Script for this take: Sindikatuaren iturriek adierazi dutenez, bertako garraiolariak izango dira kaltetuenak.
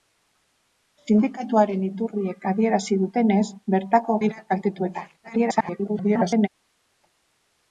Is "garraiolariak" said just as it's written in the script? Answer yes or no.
no